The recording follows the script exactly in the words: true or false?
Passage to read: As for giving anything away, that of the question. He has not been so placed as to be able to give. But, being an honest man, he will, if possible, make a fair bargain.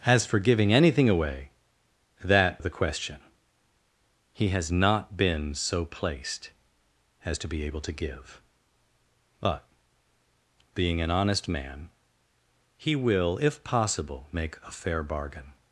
true